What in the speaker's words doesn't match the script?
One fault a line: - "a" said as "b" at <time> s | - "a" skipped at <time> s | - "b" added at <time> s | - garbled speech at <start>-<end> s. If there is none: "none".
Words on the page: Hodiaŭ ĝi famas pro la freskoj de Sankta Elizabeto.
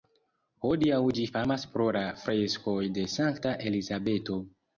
none